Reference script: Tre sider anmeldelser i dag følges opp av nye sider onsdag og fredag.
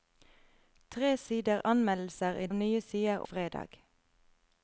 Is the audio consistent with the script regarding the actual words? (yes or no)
no